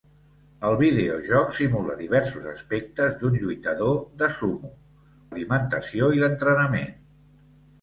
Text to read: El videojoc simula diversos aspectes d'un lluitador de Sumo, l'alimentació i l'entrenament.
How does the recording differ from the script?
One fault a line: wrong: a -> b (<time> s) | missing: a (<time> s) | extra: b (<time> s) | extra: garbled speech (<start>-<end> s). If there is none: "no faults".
no faults